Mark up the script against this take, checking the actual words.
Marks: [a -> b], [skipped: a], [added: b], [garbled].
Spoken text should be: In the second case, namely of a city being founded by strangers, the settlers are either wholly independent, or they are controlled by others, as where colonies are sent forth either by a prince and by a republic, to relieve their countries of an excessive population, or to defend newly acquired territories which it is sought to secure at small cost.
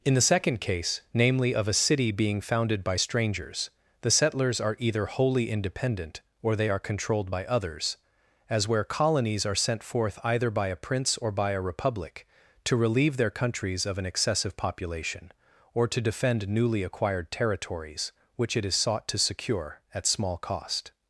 In the second case, namely of a city being founded by strangers, the settlers are either wholly independent, or they are controlled by others, as where colonies are sent forth either by a prince [and -> or] by a republic, to relieve their countries of an excessive population, or to defend newly acquired territories which it is sought to secure at small cost.